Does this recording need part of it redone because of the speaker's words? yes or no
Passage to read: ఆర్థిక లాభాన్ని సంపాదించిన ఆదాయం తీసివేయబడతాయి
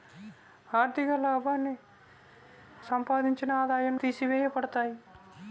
no